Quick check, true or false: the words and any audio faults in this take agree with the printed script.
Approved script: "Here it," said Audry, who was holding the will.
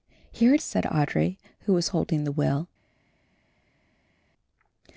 true